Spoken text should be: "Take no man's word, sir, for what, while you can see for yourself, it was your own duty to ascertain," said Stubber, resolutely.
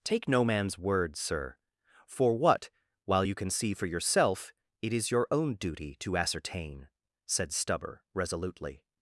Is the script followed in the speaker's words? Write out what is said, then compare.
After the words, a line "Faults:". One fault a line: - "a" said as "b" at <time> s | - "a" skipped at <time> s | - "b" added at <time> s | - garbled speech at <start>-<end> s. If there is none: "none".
"Take no man's word, sir, for what, while you can see for yourself, it is your own duty to ascertain," said Stubber, resolutely.
Faults:
- "was" said as "is" at 4.9 s